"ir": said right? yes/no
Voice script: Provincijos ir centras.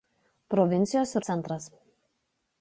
yes